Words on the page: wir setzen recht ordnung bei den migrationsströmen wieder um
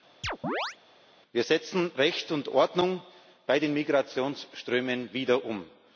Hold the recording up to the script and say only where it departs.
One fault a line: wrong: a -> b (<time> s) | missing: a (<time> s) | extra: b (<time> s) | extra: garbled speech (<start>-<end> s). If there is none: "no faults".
extra: und (2.3 s)